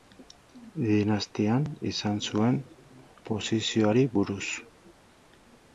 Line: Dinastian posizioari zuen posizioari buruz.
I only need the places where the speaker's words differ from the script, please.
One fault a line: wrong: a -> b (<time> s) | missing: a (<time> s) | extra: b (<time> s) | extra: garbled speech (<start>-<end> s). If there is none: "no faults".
wrong: posizioari -> izan (1.9 s)